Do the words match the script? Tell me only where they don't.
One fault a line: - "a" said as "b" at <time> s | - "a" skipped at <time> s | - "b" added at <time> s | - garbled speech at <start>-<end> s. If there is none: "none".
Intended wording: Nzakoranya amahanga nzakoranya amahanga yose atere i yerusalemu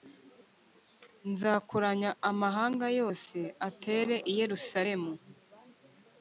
- "nzakoranya amahanga" skipped at 2.9 s